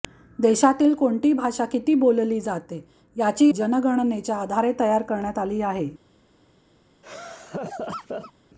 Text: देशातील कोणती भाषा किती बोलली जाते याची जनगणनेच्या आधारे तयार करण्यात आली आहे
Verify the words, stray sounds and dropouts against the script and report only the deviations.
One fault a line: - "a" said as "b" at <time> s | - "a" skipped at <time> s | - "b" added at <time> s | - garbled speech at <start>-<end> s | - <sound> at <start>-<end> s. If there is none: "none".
- laugh at 7.0-8.3 s